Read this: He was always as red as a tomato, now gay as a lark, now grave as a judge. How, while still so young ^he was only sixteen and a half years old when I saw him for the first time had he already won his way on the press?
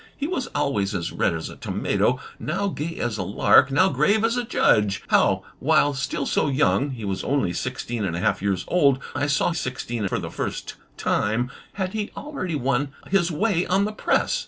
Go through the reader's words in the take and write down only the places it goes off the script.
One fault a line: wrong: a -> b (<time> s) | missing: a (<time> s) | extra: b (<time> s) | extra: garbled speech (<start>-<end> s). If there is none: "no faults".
missing: when (9.0 s)
wrong: him -> sixteen (9.5 s)